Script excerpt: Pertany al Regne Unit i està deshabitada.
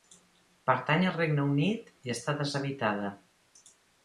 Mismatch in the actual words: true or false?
false